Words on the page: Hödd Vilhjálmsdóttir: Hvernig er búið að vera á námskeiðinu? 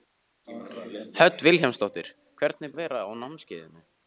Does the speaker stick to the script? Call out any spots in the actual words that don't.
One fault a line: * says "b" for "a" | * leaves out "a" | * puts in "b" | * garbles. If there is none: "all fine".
* leaves out "búið"